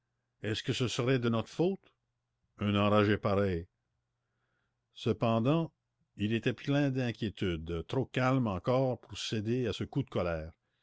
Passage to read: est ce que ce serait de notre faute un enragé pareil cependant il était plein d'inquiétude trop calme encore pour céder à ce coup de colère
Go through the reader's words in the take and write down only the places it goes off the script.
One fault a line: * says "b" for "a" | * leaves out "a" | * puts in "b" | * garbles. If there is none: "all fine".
all fine